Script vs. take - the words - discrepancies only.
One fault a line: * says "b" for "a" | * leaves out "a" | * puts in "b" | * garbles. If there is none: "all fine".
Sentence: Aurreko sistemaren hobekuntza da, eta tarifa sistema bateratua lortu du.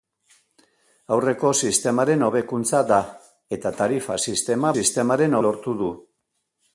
* says "sistemaren" for "bateratua"